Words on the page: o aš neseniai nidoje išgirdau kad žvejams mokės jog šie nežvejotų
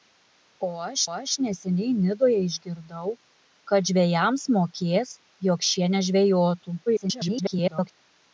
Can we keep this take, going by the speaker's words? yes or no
no